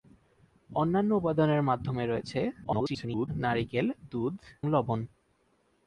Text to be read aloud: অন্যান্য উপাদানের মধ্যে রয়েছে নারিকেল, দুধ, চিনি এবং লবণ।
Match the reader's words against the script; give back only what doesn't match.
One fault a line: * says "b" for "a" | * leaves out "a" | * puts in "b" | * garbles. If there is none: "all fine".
* garbles
* leaves out "চিনি এবং"